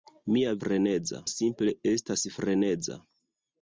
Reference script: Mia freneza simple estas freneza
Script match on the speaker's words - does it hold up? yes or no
yes